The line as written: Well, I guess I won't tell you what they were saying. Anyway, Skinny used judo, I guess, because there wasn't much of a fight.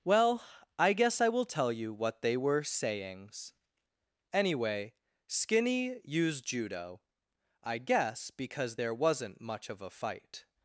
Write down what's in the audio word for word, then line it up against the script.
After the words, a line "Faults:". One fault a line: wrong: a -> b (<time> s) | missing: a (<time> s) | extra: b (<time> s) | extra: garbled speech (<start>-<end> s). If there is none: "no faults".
Well, I guess I will tell you what they were sayings. Anyway, Skinny used judo, I guess, because there wasn't much of a fight.
Faults:
wrong: won't -> will (1.3 s)
wrong: saying -> sayings (2.6 s)